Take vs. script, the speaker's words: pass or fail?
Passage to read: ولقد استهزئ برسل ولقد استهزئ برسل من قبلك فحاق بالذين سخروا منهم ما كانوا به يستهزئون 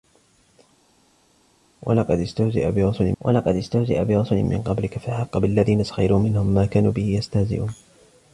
pass